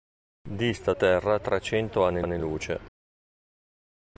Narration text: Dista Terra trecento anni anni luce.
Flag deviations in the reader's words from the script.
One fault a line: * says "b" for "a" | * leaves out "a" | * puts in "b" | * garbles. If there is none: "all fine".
all fine